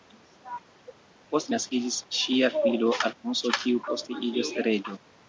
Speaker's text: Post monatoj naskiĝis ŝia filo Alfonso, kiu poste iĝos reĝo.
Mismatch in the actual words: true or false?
true